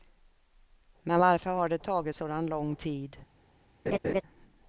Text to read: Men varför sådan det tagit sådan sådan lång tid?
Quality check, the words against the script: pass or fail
fail